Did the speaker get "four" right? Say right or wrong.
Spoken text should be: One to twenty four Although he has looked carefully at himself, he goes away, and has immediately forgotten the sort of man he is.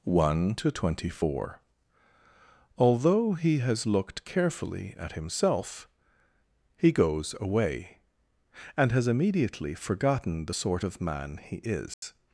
right